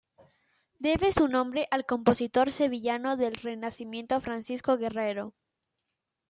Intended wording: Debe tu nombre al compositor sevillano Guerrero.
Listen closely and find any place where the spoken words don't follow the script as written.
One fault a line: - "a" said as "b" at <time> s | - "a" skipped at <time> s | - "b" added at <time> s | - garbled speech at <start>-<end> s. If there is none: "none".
- "tu" said as "su" at 1.1 s
- "del Renacimiento Francisco" added at 3.2 s